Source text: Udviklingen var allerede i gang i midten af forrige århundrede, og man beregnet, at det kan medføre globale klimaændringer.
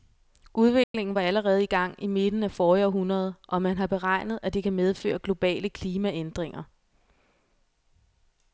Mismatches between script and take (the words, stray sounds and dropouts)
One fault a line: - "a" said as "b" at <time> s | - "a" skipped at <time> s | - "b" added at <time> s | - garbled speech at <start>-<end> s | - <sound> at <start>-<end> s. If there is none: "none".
- dropout at 0.8-0.9 s
- "har" added at 3.8 s